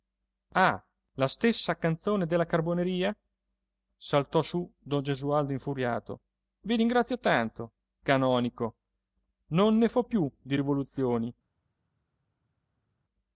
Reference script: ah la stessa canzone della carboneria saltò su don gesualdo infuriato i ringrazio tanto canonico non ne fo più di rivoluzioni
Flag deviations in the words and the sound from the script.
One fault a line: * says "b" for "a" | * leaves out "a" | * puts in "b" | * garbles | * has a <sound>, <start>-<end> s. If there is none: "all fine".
all fine